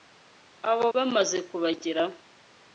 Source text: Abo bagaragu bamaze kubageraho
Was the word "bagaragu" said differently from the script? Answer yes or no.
yes